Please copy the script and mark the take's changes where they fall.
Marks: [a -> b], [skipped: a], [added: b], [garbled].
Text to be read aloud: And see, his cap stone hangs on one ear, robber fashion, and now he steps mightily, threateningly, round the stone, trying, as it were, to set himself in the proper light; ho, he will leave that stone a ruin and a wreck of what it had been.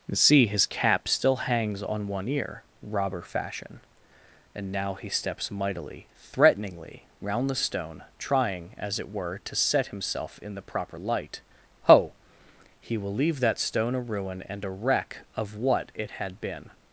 And see, his cap [stone -> still] hangs on one ear, robber fashion, and now he steps mightily, threateningly, round the stone, trying, as it were, to set himself in the proper light; ho, he will leave that stone a ruin and a wreck of what it had been.